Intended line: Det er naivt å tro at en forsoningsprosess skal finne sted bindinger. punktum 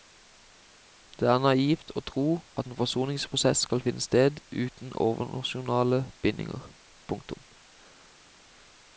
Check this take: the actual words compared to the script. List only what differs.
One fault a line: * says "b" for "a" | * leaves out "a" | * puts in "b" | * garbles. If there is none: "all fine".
* puts in "uten overnasjonale"